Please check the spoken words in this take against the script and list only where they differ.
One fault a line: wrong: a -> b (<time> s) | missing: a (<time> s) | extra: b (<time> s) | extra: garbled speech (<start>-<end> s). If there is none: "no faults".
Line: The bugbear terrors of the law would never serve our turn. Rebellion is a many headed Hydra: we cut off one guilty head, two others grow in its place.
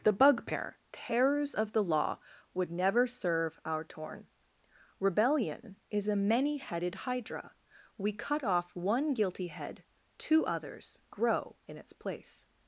wrong: turn -> torn (3.8 s)